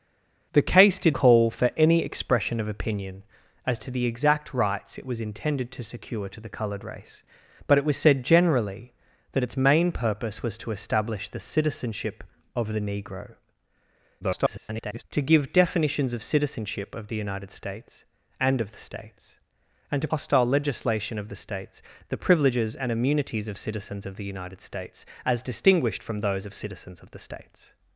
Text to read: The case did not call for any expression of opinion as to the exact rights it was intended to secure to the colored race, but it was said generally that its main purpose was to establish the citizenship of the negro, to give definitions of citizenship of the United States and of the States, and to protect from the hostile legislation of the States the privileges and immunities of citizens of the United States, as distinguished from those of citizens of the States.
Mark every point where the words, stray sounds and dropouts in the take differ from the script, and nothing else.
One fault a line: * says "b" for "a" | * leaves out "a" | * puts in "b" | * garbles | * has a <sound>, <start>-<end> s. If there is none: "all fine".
* leaves out "not"
* garbles
* leaves out "protect from the"